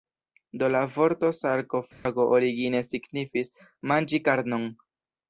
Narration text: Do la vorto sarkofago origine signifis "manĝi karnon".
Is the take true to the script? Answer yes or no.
yes